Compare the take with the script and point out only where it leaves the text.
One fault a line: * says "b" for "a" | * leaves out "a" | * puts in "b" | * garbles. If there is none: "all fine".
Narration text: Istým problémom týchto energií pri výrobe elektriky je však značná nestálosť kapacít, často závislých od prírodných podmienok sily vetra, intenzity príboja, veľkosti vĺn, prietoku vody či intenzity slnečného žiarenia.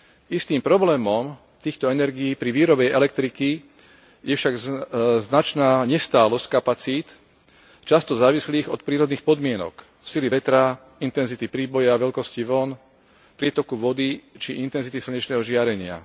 all fine